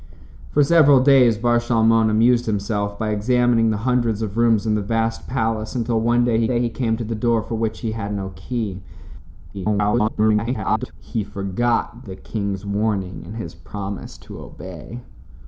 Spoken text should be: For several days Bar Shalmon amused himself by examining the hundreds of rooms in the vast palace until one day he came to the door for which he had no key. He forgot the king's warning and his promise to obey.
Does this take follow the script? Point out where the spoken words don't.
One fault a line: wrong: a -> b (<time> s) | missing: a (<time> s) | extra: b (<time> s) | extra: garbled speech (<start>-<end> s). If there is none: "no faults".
extra: day he (6.5 s)
extra: garbled speech (9.5-10.9 s)